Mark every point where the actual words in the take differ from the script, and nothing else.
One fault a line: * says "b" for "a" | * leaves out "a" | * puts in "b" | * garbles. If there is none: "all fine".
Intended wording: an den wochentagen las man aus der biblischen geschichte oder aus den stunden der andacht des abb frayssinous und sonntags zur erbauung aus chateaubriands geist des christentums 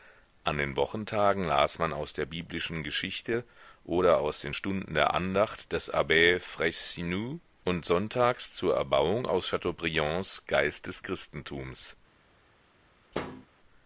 all fine